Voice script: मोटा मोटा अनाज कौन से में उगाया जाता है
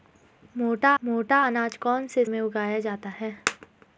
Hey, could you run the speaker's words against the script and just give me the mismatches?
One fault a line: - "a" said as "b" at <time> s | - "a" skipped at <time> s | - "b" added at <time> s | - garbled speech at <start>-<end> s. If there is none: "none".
none